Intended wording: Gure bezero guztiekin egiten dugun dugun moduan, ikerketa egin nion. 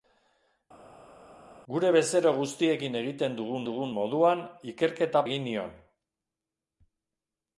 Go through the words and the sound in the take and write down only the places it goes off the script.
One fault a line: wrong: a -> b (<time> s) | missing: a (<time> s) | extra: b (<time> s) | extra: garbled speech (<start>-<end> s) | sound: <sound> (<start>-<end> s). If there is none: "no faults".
no faults